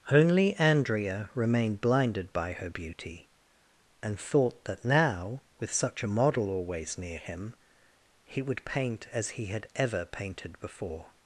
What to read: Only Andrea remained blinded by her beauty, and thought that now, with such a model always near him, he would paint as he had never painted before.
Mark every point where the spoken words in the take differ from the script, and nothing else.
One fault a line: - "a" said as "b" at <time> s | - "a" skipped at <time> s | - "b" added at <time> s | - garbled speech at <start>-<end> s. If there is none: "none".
- "never" said as "ever" at 9.7 s